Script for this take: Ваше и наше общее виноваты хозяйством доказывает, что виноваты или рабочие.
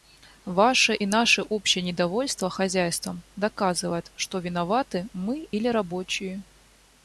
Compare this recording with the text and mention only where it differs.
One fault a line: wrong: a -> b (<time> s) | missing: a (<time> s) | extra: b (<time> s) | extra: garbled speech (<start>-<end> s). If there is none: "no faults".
wrong: виноваты -> недовольство (1.8 s)
extra: мы (5.1 s)